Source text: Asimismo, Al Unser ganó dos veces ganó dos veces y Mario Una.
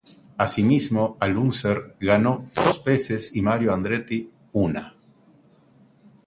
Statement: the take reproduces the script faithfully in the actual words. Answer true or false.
false